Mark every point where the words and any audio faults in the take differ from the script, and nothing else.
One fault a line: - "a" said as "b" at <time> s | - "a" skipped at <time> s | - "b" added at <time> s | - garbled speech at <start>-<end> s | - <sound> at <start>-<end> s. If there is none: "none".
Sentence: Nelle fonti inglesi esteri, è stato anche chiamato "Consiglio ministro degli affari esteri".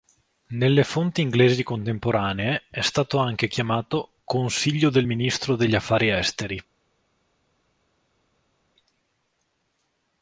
- "esteri" said as "contemporanee" at 1.6 s
- "del" added at 4.9 s